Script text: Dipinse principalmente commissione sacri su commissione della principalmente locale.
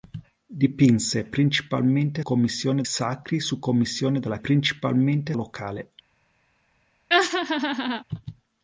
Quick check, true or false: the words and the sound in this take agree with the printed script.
false